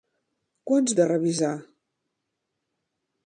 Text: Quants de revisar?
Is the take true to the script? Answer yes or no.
yes